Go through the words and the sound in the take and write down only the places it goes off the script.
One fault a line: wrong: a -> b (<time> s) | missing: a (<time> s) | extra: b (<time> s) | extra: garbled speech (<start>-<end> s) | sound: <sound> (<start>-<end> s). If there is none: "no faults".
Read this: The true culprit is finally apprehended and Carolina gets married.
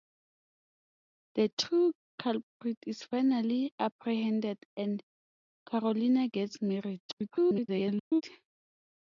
extra: garbled speech (7.1-8.2 s)